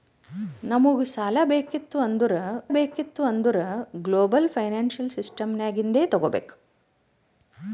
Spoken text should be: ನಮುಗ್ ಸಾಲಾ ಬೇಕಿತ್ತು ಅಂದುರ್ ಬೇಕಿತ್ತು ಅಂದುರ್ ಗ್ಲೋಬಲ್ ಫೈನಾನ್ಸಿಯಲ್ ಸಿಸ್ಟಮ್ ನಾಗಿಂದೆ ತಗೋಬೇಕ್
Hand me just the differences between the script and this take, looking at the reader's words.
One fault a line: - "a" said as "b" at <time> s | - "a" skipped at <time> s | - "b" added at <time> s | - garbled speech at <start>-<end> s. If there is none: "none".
none